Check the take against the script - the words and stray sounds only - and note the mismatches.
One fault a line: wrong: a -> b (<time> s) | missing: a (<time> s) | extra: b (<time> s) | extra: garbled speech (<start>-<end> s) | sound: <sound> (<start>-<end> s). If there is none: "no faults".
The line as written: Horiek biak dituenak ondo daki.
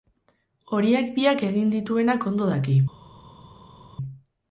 extra: egin (1.5 s)